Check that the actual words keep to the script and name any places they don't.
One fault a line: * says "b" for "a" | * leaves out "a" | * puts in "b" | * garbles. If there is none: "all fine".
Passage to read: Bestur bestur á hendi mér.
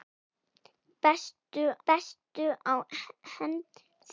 all fine